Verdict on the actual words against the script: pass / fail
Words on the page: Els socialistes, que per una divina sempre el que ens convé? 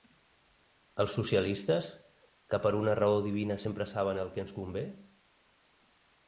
fail